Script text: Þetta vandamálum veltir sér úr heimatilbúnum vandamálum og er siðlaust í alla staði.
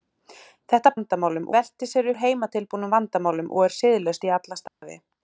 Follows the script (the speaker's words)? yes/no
yes